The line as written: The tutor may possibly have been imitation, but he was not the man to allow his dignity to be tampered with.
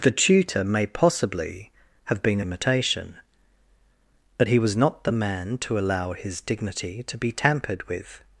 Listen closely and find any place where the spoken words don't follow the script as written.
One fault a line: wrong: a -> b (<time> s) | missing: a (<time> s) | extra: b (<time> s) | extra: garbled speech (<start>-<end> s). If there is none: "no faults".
no faults